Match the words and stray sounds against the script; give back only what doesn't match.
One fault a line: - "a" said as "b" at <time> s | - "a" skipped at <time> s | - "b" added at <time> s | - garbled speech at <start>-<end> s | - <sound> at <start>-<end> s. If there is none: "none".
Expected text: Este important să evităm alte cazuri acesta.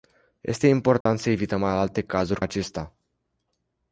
- dropout at 1.0-1.1 s